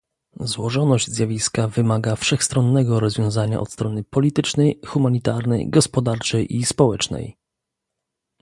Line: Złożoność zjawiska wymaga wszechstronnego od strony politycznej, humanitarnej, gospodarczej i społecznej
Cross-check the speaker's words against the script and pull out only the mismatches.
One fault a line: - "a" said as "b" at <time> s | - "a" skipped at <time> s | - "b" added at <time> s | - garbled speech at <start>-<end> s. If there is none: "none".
- "rozwiązania" added at 3.0 s